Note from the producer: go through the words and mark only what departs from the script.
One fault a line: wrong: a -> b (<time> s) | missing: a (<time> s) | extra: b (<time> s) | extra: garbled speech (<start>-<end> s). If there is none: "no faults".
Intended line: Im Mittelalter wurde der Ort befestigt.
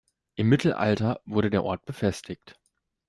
no faults